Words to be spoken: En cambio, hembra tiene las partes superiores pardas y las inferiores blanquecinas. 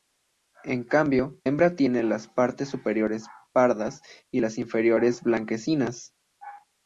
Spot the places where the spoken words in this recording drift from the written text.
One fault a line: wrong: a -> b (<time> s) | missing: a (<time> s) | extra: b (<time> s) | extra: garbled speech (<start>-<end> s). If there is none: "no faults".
no faults